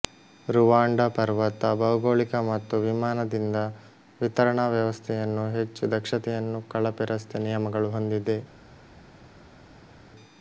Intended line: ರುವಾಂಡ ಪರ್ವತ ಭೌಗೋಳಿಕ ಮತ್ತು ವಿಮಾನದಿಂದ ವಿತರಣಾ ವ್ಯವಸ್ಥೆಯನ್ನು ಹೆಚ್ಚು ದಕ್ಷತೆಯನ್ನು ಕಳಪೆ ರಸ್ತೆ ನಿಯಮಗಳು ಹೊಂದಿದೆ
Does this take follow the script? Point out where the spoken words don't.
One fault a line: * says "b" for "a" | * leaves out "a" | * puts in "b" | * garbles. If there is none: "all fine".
all fine